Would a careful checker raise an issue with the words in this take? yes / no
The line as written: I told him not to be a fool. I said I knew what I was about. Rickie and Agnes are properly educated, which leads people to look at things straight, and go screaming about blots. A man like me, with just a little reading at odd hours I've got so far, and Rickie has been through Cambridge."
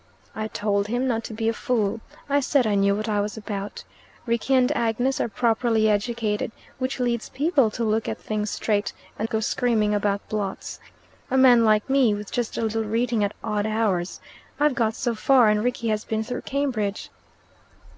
no